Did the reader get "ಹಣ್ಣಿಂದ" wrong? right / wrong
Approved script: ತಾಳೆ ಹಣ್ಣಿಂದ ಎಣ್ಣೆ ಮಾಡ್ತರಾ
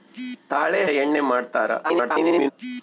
wrong